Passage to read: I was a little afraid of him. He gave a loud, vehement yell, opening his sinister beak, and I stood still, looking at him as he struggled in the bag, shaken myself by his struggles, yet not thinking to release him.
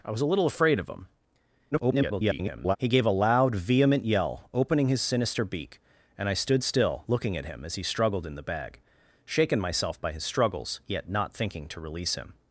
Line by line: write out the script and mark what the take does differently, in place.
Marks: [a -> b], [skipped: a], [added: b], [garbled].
I was a little afraid of him. [garbled] He gave a loud, vehement yell, opening his sinister beak, and I stood still, looking at him as he struggled in the bag, shaken myself by his struggles, yet not thinking to release him.